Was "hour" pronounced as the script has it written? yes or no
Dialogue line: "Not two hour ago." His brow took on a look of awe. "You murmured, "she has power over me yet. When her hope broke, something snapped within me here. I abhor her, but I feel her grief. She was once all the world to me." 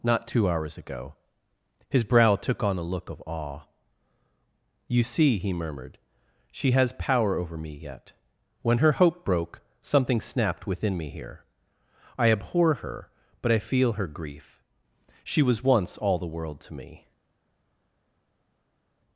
no